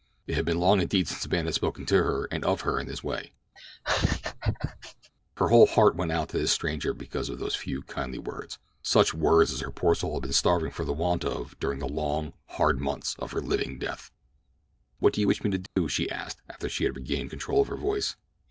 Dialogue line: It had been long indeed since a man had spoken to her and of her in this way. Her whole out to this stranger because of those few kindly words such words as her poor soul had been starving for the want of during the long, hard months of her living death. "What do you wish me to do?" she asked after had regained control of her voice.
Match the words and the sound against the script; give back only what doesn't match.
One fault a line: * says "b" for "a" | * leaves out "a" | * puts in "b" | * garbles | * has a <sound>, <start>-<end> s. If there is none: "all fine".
* has a laugh, 3.6-5.1 s
* puts in "heart went"
* has a dropout, 15.7-15.8 s
* puts in "she"